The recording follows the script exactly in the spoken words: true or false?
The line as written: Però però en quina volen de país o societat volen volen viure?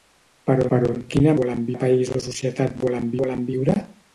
true